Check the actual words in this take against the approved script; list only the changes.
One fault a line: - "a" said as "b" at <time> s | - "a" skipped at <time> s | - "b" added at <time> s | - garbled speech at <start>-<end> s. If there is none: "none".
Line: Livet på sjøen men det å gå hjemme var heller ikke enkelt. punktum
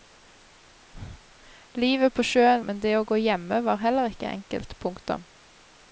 none